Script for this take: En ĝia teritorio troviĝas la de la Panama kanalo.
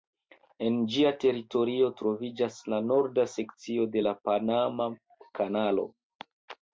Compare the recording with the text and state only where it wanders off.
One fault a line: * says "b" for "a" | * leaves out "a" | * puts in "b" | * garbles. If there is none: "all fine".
* puts in "norda sekcio"